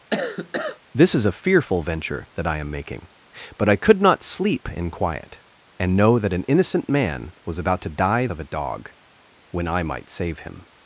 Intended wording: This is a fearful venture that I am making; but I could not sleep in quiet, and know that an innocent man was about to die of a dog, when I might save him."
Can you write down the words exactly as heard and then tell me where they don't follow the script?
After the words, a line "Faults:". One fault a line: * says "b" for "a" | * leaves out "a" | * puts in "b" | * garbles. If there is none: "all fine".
This is a fearful venture that I am making; but I could not sleep in quiet, and know that an innocent man was about to die of a dog, when I might save him."
Faults:
all fine